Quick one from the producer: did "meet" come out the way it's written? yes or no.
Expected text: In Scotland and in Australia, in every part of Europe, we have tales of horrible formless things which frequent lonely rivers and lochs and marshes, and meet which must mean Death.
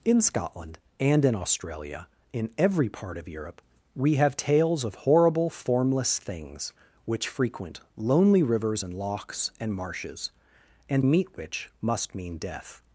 yes